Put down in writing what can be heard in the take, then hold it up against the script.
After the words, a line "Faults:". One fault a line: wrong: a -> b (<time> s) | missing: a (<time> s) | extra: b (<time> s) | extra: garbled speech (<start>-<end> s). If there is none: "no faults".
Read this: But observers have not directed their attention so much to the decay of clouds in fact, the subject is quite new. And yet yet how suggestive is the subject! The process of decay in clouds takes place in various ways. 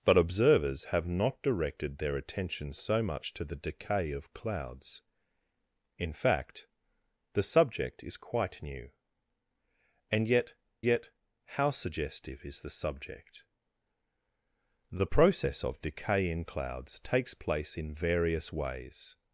But observers have not directed their attention so much to the decay of clouds in fact, the subject is quite new. And yet yet how suggestive is the subject! The process of decay in clouds takes place in various ways.
Faults:
no faults